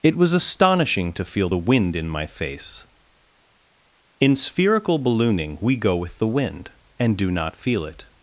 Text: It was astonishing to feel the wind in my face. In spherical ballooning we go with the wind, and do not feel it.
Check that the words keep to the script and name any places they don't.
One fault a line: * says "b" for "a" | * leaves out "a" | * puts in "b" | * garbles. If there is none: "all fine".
all fine